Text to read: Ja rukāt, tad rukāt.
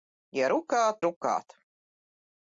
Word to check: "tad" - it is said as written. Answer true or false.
false